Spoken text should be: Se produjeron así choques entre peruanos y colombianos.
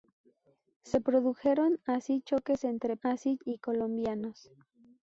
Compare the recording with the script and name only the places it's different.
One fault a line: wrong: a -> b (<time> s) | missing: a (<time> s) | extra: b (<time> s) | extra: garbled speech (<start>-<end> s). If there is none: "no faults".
wrong: peruanos -> así (3.0 s)